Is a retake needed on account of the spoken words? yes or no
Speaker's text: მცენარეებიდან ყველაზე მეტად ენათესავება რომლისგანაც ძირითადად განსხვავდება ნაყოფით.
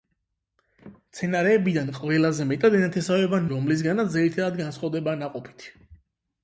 no